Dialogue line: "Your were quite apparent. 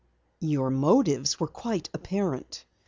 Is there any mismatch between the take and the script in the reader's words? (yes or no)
yes